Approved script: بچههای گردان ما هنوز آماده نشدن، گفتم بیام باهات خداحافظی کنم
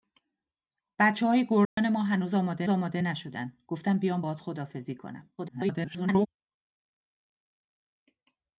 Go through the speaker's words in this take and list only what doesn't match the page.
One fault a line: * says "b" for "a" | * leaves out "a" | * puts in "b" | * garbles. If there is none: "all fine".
* puts in "آماده"
* garbles